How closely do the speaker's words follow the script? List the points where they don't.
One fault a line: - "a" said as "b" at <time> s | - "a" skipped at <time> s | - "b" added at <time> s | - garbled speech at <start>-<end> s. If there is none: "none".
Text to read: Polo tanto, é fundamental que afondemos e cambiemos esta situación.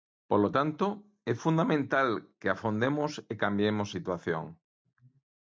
- "esta" skipped at 3.9 s